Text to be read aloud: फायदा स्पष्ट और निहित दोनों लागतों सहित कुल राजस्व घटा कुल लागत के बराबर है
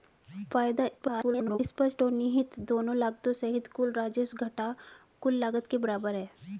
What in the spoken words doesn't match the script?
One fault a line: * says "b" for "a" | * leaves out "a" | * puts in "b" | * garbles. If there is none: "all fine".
* garbles